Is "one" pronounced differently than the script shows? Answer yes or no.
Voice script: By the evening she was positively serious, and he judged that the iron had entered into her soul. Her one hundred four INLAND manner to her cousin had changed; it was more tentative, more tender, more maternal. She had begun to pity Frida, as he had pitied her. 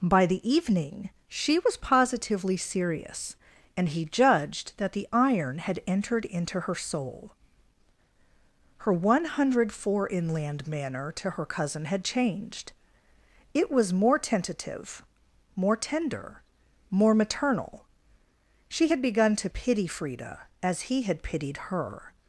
no